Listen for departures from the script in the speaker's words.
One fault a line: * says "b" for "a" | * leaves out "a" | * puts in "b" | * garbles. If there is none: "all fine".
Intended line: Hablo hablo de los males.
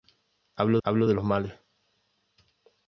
all fine